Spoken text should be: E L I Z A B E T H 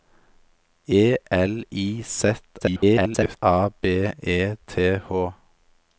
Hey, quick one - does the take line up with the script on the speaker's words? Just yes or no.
no